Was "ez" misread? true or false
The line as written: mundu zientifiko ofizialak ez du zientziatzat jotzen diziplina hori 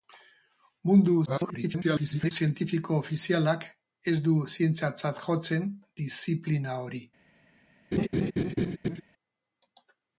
false